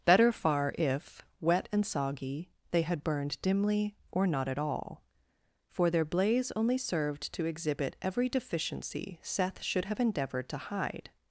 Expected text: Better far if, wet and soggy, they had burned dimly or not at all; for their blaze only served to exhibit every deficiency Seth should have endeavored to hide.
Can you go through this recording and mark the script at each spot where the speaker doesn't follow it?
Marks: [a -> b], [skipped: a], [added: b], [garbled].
Better far if, wet and soggy, they had burned dimly or not at all; for their blaze only served to exhibit every deficiency Seth should have endeavored to hide.